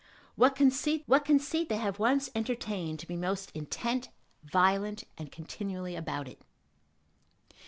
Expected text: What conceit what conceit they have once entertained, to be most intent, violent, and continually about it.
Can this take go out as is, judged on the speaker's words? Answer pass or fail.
pass